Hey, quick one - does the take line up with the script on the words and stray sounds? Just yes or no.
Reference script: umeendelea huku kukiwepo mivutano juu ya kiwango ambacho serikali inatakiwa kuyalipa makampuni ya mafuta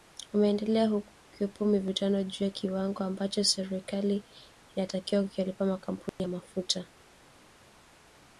no